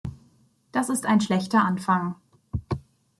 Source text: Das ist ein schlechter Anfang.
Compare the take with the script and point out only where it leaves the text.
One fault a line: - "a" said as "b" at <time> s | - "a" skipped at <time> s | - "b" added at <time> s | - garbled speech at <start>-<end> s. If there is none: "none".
none